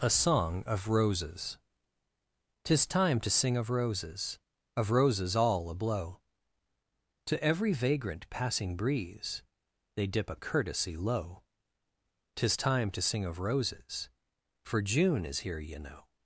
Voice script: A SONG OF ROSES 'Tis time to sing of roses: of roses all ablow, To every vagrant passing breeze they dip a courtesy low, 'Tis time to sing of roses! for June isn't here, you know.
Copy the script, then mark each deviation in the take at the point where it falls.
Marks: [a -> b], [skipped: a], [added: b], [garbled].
A SONG OF ROSES 'Tis time to sing of roses: of roses all ablow, To every vagrant passing breeze they dip a courtesy low, 'Tis time to sing of roses! for June [isn't -> is] here, you know.